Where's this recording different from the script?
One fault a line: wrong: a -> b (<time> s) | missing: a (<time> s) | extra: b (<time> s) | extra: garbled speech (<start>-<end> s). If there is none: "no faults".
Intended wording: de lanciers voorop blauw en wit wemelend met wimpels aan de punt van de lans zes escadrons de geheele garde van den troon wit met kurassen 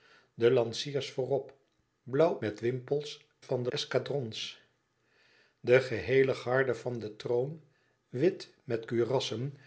missing: en wit wemelend (2.4 s)
missing: aan de punt (3.3 s)
missing: lans zes (3.7 s)